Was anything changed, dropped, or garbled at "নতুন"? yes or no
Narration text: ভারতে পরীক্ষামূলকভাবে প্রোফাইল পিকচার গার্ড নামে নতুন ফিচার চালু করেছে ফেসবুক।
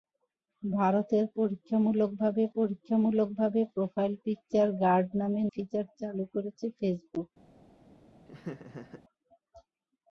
yes